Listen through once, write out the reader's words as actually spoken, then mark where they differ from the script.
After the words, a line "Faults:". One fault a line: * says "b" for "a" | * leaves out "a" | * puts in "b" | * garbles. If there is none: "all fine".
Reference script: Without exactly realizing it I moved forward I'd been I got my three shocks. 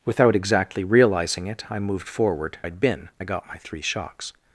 Without exactly realizing it I moved forward I'd been I got my three shocks.
Faults:
all fine